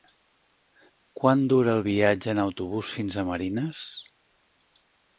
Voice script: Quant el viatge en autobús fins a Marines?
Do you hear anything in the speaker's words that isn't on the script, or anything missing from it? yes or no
yes